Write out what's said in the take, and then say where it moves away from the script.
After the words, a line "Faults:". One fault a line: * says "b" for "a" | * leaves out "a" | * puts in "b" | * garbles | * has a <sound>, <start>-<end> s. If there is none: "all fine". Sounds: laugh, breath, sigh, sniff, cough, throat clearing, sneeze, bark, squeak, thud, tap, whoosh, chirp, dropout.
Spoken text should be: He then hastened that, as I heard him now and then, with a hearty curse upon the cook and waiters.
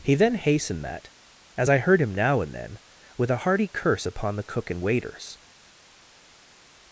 He then hastened that, as I heard him now and then, with a hearty curse upon the cook and waiters.
Faults:
all fine